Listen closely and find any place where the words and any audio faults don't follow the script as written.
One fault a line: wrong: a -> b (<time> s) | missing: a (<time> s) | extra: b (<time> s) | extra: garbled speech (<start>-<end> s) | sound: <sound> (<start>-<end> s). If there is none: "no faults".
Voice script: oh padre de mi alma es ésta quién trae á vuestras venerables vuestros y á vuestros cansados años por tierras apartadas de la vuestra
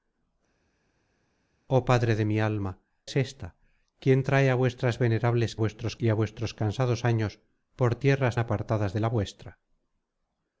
no faults